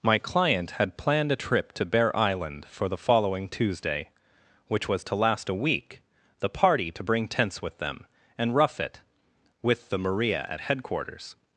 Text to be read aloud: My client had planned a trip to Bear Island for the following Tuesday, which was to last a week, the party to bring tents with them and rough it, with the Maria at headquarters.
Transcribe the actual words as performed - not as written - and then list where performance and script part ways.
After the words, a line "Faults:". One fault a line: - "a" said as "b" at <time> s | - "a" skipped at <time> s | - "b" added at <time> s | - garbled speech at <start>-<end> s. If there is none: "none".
My client had planned a trip to Bear Island for the following Tuesday, which was to last a week, the party to bring tents with them and rough it, with the Maria at headquarters.
Faults:
none